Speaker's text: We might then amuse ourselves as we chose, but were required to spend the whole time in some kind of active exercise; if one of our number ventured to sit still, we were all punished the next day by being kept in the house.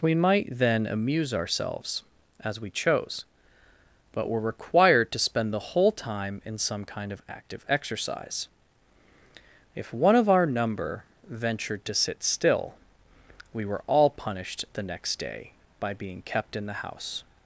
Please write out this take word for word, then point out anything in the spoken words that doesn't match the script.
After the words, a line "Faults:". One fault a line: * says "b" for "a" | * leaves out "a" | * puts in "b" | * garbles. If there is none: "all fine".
We might then amuse ourselves as we chose, but were required to spend the whole time in some kind of active exercise; if one of our number ventured to sit still, we were all punished the next day by being kept in the house.
Faults:
all fine